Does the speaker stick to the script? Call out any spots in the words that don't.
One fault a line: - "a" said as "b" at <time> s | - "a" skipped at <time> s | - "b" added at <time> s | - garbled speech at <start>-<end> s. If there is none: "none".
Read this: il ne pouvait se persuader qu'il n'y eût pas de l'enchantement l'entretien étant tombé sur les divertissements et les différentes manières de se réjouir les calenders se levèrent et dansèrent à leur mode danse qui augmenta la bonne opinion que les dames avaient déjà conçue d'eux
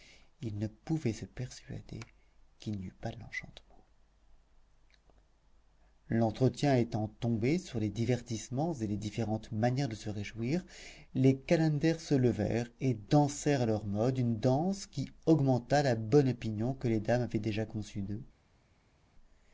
- "une" added at 14.2 s